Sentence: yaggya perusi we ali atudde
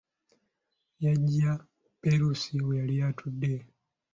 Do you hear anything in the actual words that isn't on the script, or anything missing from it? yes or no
yes